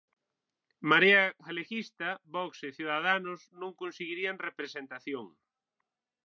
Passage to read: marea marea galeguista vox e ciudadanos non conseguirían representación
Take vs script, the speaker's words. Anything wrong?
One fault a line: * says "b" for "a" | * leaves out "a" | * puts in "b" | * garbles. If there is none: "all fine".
* leaves out "marea"